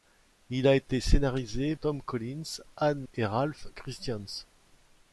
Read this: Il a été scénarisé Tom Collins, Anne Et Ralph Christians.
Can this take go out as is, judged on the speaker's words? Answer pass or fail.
pass